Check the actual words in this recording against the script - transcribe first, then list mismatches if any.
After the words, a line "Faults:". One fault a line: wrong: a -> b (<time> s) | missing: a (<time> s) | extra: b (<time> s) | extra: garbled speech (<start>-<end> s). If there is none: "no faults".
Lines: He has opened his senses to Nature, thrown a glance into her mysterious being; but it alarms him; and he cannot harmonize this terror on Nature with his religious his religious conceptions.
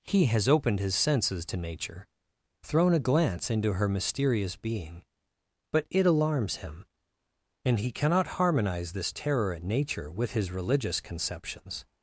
He has opened his senses to Nature, thrown a glance into her mysterious being; but it alarms him; and he cannot harmonize this terror at Nature with his religious conceptions.
Faults:
wrong: on -> at (9.5 s)
missing: his religious (11.0 s)